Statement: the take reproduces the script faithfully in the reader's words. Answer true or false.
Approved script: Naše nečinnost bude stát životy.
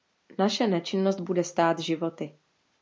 true